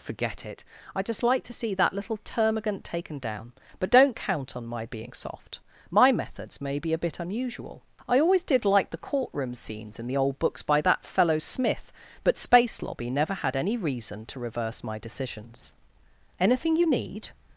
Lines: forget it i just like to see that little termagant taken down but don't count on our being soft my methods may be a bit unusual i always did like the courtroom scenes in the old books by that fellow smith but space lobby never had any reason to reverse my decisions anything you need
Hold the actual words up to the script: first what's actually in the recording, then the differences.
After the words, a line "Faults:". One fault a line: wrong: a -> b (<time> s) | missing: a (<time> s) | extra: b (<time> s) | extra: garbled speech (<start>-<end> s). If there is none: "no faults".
forget it i just like to see that little termagant taken down but don't count on my being soft my methods may be a bit unusual i always did like the courtroom scenes in the old books by that fellow smith but space lobby never had any reason to reverse my decisions anything you need
Faults:
wrong: our -> my (4.7 s)